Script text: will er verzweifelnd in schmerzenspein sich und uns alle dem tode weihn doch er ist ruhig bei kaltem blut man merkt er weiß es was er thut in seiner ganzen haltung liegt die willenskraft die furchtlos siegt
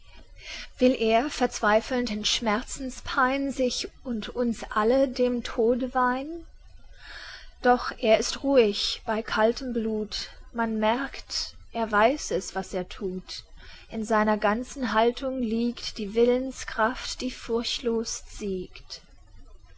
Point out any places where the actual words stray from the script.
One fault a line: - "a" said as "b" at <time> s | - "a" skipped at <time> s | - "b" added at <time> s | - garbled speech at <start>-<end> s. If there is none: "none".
none